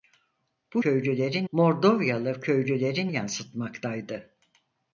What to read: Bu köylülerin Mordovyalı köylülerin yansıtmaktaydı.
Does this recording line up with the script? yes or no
yes